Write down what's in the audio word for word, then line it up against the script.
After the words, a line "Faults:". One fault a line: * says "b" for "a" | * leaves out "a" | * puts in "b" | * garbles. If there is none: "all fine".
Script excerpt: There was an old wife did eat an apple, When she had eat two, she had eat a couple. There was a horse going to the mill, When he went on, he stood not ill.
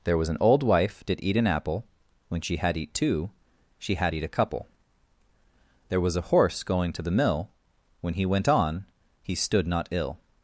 There was an old wife did eat an apple, When she had eat two, she had eat a couple. There was a horse going to the mill, When he went on, he stood not ill.
Faults:
all fine